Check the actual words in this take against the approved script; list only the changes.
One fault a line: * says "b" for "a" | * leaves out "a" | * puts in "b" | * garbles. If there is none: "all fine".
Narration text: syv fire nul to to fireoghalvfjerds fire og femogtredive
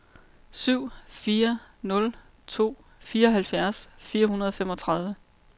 * leaves out "to"
* puts in "hundrede"